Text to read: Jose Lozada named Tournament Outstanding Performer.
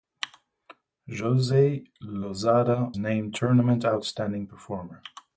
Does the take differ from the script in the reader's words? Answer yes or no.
no